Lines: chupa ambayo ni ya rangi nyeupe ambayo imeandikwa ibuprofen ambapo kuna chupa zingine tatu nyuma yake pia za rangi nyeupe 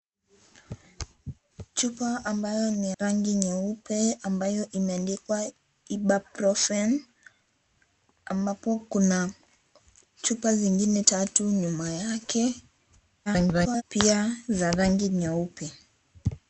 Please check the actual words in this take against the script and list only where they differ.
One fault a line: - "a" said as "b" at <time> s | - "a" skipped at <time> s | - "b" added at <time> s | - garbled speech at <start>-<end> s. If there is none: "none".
- "ya" skipped at 2.9 s
- garbled speech at 13.3-13.8 s